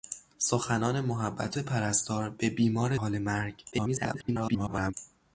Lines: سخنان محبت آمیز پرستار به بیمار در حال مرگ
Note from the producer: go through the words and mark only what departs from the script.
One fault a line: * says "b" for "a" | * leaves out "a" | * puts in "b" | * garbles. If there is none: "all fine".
* leaves out "آمیز"
* leaves out "در"
* garbles